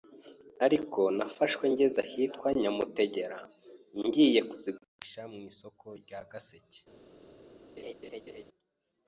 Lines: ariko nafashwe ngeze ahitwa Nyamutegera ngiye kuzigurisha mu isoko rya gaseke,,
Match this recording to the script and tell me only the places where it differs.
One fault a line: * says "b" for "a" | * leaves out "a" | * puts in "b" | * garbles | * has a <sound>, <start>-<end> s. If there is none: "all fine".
* has a laugh, 7.8-8.4 s